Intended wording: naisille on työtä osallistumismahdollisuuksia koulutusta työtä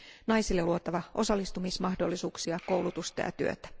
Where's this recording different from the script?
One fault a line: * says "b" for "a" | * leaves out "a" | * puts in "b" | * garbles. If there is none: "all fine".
* says "luotava" for "työtä"
* puts in "ja"